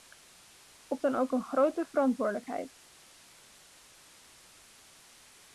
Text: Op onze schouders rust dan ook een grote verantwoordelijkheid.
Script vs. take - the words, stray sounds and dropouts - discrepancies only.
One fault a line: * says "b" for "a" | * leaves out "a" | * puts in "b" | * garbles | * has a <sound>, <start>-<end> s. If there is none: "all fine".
* leaves out "onze schouders rust"